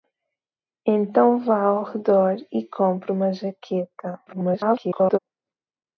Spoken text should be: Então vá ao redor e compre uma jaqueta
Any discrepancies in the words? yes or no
yes